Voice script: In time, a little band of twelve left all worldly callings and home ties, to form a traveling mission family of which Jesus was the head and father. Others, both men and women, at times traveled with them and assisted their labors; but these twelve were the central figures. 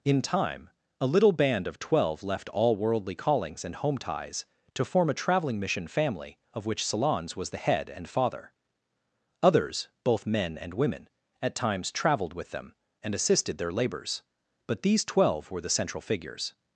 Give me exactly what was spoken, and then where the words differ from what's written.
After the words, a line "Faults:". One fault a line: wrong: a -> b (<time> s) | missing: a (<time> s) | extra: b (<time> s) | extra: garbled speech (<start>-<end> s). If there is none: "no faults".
In time, a little band of twelve left all worldly callings and home ties, to form a traveling mission family of which Salons was the head and father. Others, both men and women, at times traveled with them and assisted their labors; but these twelve were the central figures.
Faults:
wrong: Jesus -> Salons (6.8 s)